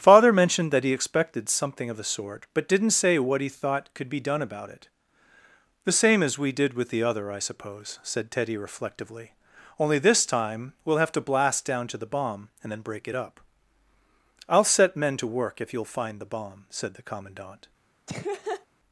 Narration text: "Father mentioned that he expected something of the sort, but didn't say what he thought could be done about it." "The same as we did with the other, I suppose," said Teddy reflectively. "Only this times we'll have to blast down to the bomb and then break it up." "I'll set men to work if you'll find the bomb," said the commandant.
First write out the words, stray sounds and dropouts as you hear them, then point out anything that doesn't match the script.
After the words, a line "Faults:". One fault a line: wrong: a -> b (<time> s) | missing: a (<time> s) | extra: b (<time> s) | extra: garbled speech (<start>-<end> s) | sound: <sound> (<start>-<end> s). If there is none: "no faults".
"Father mentioned that he expected something of the sort, but didn't say what he thought could be done about it." "The same as we did with the other, I suppose," said Teddy reflectively. "Only this time we'll have to blast down to the bomb and then break it up." "I'll set men to work if you'll find the bomb," said the commandant.
Faults:
wrong: times -> time (10.2 s)
sound: laugh (18.1-18.7 s)